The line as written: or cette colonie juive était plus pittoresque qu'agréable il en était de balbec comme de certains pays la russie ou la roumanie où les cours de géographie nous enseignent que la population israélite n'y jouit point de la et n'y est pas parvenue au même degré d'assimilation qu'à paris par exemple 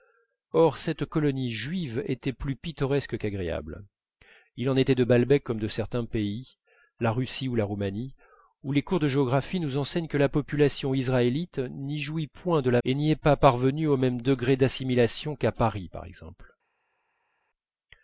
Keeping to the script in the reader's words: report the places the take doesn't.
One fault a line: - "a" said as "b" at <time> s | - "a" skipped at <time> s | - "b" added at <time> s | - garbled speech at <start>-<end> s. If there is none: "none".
none